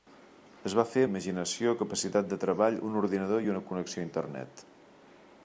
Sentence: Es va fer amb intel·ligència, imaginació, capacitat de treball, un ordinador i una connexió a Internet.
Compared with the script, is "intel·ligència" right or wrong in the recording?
wrong